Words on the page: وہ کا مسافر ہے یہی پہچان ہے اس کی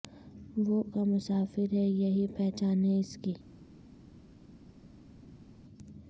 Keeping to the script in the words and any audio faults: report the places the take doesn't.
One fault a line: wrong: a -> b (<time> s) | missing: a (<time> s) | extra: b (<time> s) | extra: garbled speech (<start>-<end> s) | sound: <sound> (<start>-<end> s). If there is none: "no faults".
no faults